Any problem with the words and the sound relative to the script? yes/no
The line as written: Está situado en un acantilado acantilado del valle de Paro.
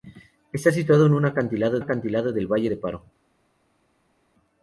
no